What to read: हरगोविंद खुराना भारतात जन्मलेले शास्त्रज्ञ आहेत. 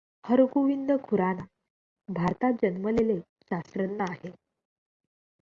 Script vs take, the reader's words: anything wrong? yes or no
no